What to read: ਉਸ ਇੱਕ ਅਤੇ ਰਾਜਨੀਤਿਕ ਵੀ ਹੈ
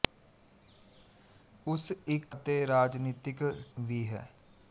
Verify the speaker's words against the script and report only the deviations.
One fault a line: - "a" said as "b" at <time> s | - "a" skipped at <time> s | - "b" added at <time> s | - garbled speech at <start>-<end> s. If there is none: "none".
none